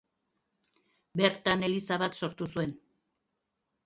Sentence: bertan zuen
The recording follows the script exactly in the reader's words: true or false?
false